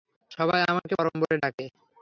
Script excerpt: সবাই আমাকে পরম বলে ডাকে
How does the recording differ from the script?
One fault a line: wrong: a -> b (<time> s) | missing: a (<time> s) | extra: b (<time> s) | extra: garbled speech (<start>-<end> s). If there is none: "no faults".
no faults